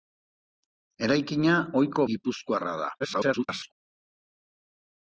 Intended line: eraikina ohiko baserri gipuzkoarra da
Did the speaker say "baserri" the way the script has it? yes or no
no